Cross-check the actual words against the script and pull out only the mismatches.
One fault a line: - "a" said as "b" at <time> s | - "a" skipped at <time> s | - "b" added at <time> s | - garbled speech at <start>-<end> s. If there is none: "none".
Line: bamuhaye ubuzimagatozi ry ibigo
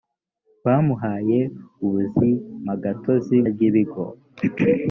none